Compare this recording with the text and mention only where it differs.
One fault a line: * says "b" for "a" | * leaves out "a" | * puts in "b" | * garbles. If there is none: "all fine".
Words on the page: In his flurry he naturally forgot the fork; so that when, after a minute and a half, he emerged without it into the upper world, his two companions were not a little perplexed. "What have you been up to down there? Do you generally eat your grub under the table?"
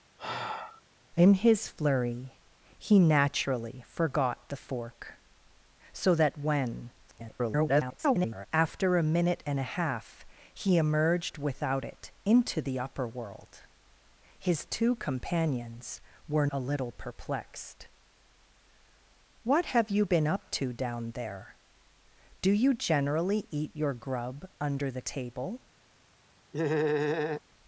* garbles
* leaves out "not"